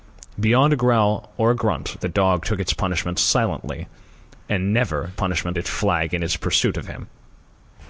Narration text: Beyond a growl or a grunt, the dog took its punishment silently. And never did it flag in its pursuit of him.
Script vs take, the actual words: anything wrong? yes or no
yes